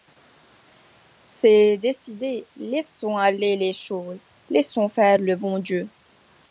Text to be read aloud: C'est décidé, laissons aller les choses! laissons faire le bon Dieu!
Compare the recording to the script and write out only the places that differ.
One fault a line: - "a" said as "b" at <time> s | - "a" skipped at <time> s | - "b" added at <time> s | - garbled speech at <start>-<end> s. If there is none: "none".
none